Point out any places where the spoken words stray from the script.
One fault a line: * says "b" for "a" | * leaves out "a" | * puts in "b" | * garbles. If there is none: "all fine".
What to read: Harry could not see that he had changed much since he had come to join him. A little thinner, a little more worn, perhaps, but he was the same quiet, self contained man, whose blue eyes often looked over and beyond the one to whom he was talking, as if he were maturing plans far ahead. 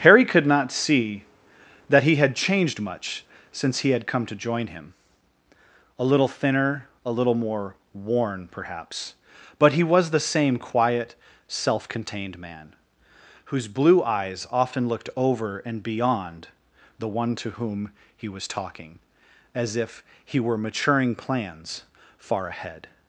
all fine